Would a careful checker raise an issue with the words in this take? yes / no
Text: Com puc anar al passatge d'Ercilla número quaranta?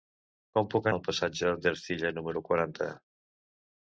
yes